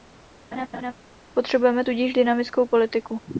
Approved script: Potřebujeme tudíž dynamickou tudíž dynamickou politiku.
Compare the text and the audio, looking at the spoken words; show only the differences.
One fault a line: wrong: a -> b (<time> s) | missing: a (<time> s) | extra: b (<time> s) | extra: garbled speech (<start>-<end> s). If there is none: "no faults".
missing: tudíž dynamickou (2.7 s)